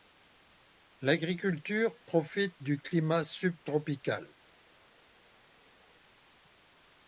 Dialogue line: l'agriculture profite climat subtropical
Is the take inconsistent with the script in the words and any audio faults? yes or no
yes